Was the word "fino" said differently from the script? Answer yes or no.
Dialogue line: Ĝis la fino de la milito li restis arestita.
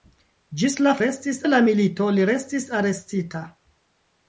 yes